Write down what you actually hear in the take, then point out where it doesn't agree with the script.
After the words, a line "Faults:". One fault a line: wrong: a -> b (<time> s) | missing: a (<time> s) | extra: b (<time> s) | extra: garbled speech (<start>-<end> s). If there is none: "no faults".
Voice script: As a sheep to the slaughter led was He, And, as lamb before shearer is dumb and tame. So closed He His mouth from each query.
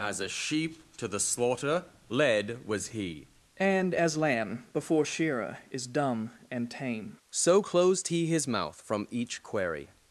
As a sheep to the slaughter led was He, And, as lamb before shearer is dumb and tame. So closed He His mouth from each query.
Faults:
no faults